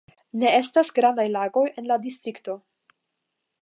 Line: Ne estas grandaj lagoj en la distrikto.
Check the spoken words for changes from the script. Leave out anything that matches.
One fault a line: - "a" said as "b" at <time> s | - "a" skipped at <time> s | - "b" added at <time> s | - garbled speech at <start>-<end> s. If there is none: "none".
none